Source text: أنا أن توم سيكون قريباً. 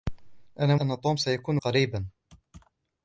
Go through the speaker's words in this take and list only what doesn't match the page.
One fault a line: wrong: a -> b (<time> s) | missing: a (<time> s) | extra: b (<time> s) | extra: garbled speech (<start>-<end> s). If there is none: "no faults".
no faults